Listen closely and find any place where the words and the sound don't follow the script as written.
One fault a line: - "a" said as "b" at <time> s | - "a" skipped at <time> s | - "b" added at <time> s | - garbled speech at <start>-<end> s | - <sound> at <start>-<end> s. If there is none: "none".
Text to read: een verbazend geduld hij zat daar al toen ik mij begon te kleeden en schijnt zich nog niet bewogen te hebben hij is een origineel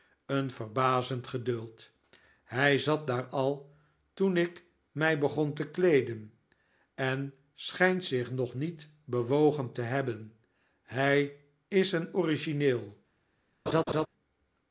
- laugh at 13.7-14.1 s